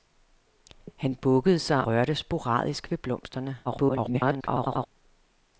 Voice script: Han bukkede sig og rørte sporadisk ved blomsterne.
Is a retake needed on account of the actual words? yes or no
yes